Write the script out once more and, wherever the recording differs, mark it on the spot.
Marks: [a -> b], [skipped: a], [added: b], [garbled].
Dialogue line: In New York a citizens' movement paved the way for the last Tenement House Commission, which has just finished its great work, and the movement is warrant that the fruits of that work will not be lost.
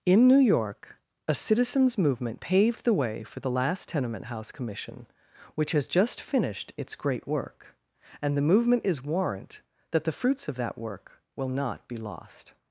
In New York a citizens' movement paved the way for the last Tenement House Commission, which has just finished its great work, and the movement is warrant that the fruits of that work will not be lost.